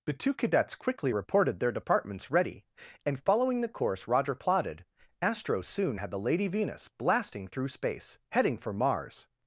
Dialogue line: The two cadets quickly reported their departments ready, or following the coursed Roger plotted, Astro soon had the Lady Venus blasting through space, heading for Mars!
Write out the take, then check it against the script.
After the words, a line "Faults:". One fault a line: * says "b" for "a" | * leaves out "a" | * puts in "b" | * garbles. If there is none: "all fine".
The two cadets quickly reported their departments ready, and following the course Roger plotted, Astro soon had the Lady Venus blasting through space, heading for Mars!
Faults:
* says "and" for "or"
* says "course" for "coursed"